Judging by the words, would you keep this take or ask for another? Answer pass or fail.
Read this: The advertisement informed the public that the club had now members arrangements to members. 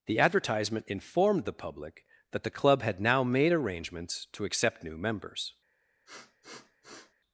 fail